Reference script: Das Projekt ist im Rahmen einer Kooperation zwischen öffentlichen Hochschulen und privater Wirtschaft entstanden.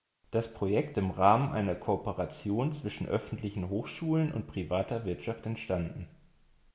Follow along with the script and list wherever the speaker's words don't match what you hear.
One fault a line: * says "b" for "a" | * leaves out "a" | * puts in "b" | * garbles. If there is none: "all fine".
* leaves out "ist"